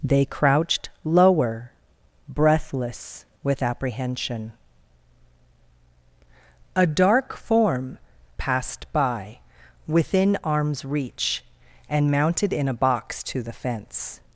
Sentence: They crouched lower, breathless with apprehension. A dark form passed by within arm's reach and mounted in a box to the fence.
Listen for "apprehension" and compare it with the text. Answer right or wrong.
right